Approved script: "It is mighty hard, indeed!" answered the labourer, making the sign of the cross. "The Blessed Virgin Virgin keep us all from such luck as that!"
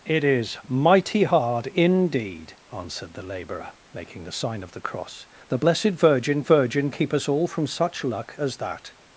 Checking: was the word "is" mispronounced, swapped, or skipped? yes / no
no